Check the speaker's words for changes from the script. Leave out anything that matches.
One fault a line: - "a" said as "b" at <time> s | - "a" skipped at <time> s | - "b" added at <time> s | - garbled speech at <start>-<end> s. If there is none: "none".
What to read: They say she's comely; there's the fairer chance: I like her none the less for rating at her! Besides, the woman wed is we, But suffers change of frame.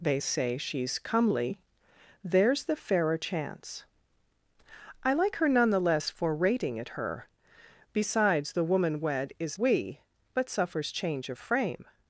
none